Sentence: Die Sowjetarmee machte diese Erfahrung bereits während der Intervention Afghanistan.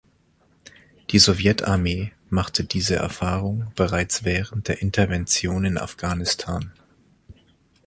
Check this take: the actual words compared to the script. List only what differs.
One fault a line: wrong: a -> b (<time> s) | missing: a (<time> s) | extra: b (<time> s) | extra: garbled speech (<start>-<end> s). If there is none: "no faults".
extra: in (5.6 s)